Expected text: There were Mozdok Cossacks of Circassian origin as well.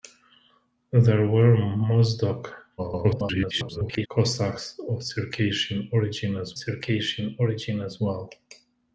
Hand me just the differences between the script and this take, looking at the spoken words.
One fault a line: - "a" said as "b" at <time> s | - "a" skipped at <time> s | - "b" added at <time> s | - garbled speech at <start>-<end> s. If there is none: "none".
- garbled speech at 2.8-4.1 s
- "Circassian origin as" added at 6.5 s